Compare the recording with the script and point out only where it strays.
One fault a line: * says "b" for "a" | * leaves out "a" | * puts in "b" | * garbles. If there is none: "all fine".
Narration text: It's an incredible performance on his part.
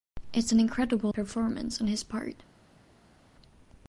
all fine